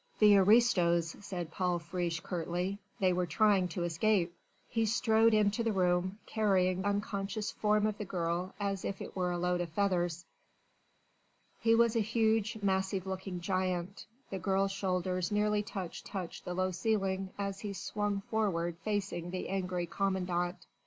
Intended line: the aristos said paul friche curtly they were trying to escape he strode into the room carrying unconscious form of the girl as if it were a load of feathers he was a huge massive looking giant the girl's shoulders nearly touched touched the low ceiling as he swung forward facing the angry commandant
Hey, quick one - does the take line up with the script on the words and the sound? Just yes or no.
yes